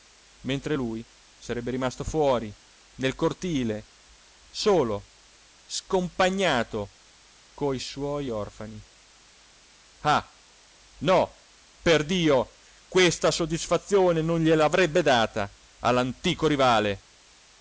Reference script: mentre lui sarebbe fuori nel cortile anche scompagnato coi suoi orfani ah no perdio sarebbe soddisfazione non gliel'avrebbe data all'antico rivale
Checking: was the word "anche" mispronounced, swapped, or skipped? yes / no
yes